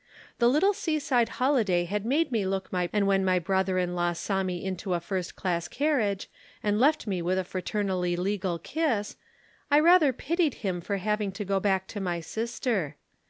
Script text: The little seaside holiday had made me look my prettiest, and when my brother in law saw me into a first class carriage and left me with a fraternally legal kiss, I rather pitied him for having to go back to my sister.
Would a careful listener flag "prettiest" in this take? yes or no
yes